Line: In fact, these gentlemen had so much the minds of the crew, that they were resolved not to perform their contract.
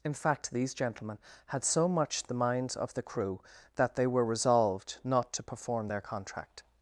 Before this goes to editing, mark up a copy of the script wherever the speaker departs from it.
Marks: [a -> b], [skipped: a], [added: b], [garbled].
In fact, these gentlemen had so much the minds of the crew, that they were resolved not to perform their contract.